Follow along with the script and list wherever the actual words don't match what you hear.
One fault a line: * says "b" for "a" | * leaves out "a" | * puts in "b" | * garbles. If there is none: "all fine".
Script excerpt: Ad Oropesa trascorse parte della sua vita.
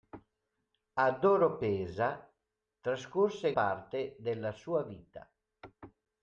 all fine